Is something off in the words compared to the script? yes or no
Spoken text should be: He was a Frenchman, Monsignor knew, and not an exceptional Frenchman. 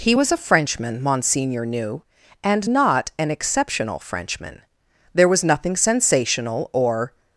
yes